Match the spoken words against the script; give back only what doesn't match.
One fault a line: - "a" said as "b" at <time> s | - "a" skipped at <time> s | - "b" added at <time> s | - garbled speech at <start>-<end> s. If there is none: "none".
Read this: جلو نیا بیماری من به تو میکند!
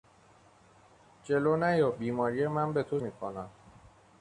none